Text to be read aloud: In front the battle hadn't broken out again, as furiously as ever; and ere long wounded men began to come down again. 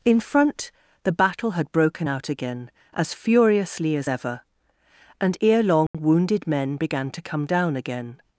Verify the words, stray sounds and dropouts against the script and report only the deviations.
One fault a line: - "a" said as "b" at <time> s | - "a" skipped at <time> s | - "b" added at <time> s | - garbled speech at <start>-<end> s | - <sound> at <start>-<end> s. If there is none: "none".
- "hadn't" said as "had" at 1.5 s
- dropout at 5.9-5.9 s